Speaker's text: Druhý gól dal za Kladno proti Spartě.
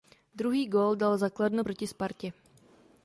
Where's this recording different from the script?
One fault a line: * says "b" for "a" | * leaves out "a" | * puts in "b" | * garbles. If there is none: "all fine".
all fine